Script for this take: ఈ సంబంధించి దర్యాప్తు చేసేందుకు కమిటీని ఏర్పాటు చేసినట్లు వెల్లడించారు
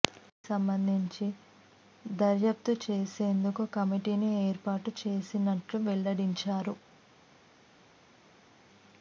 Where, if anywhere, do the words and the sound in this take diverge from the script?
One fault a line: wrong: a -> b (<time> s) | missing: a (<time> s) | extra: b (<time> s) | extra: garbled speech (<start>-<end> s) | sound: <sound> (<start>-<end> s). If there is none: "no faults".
no faults